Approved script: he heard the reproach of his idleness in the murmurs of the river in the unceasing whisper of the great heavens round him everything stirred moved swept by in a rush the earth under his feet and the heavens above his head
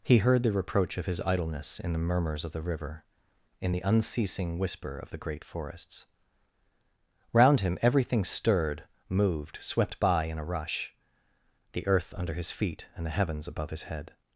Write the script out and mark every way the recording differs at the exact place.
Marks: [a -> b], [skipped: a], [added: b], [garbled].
he heard the reproach of his idleness in the murmurs of the river in the unceasing whisper of the great [heavens -> forests] round him everything stirred moved swept by in a rush the earth under his feet and the heavens above his head